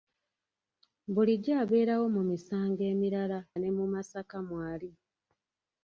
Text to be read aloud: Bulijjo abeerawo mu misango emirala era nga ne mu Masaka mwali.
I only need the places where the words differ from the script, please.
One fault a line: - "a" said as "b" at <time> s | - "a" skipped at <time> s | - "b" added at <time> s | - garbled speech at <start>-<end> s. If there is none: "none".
- "era nga" skipped at 3.4 s